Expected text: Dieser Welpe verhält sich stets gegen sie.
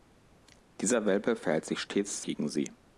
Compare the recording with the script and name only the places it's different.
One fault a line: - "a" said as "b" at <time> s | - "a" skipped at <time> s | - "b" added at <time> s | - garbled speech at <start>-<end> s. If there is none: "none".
none